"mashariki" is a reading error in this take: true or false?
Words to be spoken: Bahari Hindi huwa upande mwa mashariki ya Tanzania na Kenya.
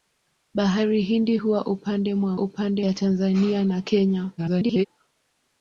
true